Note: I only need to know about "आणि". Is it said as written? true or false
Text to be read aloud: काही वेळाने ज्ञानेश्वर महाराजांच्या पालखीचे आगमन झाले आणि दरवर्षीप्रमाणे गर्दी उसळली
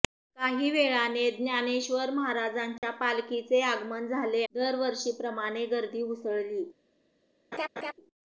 false